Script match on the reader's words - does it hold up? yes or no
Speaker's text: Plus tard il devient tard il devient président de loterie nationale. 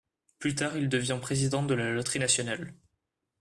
no